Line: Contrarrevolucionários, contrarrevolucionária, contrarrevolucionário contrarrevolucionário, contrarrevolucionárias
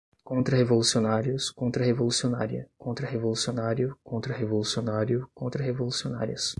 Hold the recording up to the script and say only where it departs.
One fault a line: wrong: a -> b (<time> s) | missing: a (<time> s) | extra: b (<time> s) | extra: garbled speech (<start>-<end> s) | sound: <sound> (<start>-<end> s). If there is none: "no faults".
no faults